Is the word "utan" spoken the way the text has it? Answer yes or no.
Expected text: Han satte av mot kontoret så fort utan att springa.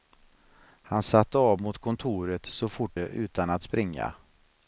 yes